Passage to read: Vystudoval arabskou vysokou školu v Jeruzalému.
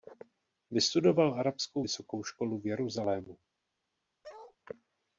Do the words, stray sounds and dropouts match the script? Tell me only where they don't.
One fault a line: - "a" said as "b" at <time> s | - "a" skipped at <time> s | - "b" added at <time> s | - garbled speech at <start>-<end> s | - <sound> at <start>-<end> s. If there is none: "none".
- bark at 4.2-4.6 s